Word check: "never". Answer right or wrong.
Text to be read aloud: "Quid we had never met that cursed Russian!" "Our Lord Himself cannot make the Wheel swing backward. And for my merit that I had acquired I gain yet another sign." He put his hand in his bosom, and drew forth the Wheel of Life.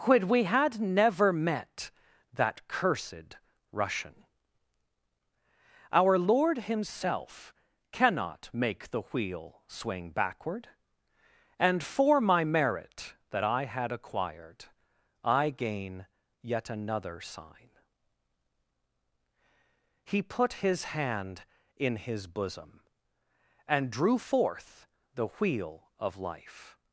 right